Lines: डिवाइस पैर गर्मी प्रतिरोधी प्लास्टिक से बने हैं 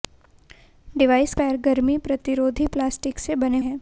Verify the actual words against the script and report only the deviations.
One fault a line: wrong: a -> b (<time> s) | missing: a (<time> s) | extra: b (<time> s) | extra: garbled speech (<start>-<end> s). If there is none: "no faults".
no faults